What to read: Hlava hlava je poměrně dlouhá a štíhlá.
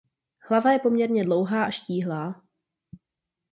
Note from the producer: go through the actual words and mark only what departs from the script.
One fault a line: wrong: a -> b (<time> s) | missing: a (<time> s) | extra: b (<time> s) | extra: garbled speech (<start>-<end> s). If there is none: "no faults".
missing: hlava (0.7 s)